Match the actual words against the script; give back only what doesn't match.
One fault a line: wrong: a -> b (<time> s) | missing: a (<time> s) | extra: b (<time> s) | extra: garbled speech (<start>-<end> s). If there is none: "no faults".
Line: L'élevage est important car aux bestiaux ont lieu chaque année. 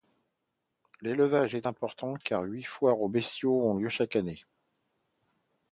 extra: huit foires (2.4 s)